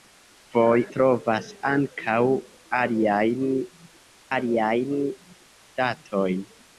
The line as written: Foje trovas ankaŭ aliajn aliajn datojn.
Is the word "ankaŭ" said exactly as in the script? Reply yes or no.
yes